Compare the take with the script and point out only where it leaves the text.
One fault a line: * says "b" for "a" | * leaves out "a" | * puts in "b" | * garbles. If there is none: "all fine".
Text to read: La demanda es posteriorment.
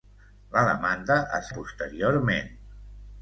all fine